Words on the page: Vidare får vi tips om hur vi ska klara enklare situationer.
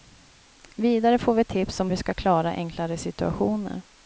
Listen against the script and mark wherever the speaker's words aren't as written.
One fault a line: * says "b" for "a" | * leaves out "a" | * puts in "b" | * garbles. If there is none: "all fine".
* leaves out "hur"